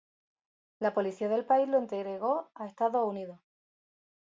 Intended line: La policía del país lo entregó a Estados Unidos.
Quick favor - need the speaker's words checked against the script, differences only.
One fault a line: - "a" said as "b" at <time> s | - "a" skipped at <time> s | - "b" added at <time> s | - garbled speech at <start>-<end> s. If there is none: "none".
none